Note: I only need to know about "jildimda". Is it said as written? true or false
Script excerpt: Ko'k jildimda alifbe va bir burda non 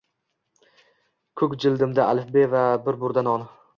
true